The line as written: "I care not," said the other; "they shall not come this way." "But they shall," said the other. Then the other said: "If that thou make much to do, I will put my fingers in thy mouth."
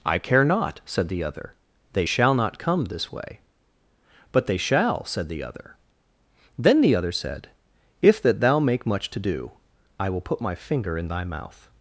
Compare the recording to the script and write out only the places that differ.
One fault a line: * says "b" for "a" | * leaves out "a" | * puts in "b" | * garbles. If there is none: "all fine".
* says "finger" for "fingers"